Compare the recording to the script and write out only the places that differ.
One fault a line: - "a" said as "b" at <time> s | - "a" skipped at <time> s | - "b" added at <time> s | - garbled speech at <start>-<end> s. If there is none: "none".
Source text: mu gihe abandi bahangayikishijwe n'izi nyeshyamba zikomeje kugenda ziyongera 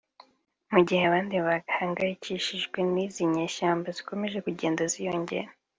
none